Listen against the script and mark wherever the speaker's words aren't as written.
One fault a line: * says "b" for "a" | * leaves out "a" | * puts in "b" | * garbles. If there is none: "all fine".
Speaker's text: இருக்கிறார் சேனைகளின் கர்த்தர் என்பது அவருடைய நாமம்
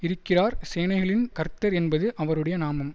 all fine